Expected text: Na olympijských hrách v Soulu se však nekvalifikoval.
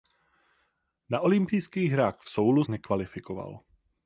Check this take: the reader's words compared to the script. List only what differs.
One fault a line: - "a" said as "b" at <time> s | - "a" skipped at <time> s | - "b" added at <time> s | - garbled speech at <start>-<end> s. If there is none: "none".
- "se však" skipped at 2.6 s